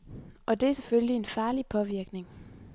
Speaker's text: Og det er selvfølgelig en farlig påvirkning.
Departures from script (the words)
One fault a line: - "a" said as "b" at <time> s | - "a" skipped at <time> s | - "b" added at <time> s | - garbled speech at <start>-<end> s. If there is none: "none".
none